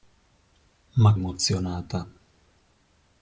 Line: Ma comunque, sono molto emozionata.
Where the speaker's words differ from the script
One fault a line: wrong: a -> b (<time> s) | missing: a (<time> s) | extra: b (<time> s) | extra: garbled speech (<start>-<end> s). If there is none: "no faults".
missing: comunque sono molto (1.1 s)